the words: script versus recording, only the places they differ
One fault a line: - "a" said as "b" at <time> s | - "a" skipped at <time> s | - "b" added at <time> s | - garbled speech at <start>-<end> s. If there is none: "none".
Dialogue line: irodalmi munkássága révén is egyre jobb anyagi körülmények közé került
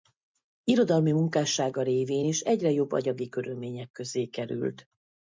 none